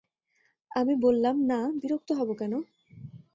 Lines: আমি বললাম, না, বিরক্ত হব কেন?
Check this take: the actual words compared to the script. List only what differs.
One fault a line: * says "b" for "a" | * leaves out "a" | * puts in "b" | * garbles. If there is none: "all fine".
all fine